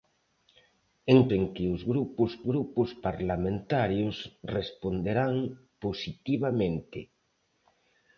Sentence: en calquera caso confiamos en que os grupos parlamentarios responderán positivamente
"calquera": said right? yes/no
no